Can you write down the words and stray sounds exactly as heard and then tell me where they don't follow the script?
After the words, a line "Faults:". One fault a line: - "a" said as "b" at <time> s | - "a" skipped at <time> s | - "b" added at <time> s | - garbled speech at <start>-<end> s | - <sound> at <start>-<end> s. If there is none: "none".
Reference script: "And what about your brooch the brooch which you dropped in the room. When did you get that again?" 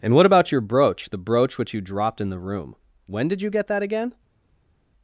"And what about your brooch the brooch which you dropped in the room. When did you get that again?"
Faults:
none